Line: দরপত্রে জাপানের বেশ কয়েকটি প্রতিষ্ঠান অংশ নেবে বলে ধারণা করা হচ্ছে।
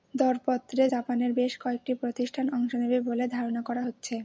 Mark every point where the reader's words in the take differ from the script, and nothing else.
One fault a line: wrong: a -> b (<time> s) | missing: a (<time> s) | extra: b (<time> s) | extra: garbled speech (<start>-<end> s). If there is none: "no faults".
no faults